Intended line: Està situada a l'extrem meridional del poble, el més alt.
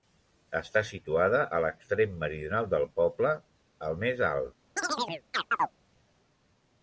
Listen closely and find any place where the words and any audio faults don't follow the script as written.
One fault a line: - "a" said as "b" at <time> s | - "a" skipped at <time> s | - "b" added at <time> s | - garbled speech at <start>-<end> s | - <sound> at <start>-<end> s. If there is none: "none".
- chirp at 4.8-5.7 s